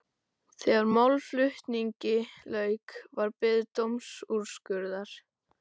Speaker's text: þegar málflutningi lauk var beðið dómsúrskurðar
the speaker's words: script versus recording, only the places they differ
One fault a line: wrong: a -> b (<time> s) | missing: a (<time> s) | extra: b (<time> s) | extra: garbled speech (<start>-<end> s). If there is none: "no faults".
no faults